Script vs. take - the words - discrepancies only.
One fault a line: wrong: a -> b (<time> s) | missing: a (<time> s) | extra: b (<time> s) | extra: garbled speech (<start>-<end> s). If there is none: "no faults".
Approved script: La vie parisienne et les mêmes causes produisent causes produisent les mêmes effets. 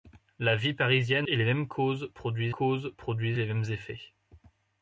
no faults